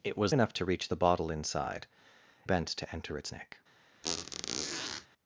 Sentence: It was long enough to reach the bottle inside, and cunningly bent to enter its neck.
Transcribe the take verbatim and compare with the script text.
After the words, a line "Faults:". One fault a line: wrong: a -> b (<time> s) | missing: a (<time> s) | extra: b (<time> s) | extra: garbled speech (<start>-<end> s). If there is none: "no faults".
It was enough to reach the bottle inside, bent to enter its neck.
Faults:
missing: long (0.3 s)
missing: and cunningly (1.9 s)